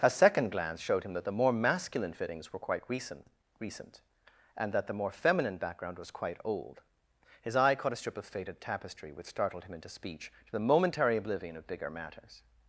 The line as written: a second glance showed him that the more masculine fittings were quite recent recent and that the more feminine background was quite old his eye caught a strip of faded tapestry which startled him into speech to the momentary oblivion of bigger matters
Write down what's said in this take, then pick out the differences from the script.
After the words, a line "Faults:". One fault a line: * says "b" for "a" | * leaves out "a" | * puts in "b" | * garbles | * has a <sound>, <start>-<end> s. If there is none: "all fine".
a second glance showed him that the more masculine fittings were quite recent recent and that the more feminine background was quite old his eye caught a strip of faded tapestry which startled him into speech to the momentary oblivion of bigger matters
Faults:
all fine